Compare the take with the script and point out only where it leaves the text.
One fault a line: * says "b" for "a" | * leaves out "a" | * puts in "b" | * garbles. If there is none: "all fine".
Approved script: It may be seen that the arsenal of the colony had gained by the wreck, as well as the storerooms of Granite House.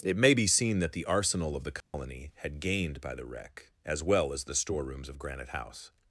all fine